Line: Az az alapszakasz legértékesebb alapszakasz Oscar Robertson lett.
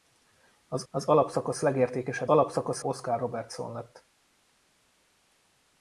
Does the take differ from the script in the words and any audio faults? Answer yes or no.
no